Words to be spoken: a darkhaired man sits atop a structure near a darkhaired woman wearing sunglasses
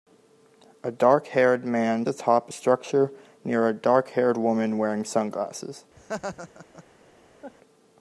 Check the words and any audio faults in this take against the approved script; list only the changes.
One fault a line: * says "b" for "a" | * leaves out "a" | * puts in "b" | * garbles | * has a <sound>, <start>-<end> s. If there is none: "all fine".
* leaves out "sits"
* has a laugh, 6.0-6.8 s
* has a laugh, 7.4-7.6 s